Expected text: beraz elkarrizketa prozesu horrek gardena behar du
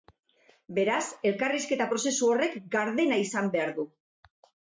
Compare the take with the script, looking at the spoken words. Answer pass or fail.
fail